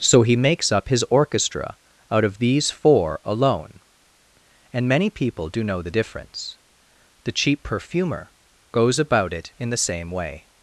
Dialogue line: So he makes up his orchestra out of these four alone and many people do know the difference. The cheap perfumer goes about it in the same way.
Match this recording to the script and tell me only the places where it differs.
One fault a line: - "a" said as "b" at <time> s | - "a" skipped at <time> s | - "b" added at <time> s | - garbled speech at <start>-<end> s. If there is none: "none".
none